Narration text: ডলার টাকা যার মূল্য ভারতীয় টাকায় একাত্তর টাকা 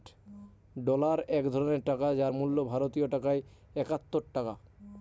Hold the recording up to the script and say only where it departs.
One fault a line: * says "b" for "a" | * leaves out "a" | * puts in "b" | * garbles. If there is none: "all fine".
* puts in "এক ধরনের"